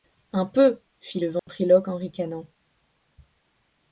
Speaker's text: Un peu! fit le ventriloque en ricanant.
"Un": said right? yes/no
yes